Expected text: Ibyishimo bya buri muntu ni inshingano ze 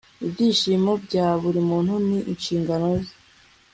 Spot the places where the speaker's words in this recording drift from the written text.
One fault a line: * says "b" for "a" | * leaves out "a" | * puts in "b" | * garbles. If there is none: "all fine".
all fine